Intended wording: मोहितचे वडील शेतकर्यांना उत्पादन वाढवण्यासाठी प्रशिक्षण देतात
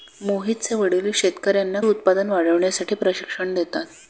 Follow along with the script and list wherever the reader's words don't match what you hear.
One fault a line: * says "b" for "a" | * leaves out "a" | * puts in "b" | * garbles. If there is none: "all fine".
all fine